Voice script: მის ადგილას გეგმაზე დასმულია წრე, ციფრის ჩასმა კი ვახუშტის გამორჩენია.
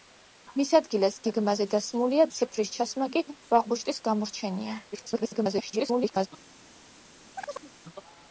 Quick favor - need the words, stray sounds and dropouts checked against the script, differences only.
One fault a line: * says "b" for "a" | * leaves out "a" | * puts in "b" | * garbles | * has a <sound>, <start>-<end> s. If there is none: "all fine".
* leaves out "წრე"
* garbles
* has a chirp, 7.3-7.7 s